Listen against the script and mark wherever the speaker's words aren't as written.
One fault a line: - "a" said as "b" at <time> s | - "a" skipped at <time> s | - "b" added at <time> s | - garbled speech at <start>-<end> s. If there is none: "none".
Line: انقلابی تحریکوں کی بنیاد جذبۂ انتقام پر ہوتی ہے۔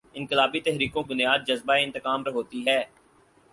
- "کی" skipped at 1.0 s
- "پر" skipped at 2.2 s